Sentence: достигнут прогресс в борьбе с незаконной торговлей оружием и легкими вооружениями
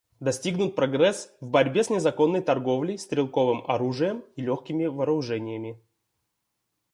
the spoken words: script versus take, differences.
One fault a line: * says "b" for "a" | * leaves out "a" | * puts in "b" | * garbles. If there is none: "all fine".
* puts in "стрелковым"